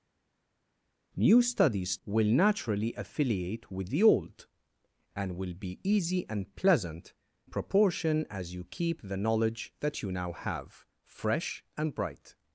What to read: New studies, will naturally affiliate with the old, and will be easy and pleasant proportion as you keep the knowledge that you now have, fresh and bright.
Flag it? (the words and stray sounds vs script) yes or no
no